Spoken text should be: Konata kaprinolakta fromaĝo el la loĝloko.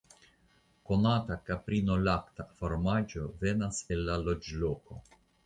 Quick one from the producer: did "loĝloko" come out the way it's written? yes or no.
yes